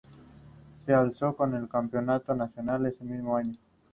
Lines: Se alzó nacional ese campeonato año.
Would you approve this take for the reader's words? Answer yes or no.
no